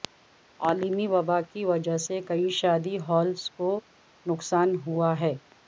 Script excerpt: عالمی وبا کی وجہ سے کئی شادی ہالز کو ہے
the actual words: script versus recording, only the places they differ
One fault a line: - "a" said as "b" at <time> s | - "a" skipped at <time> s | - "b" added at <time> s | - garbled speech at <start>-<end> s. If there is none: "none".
- "نقصان ہوا" added at 4.2 s